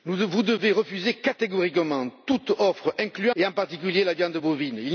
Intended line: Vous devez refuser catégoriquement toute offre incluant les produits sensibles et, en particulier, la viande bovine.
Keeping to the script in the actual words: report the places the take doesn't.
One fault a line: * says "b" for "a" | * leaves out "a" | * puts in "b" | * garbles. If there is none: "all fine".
* leaves out "les produits sensibles"